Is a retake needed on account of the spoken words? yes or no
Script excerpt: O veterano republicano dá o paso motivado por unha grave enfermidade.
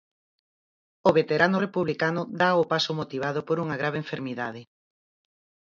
no